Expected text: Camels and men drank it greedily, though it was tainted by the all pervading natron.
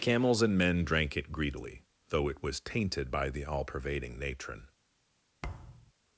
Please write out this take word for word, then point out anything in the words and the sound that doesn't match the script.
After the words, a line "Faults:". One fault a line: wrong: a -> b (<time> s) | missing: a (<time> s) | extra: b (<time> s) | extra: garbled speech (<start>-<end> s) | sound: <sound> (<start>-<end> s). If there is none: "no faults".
Camels and men drank it greedily, though it was tainted by the all pervading natron.
Faults:
sound: thud (5.4-5.9 s)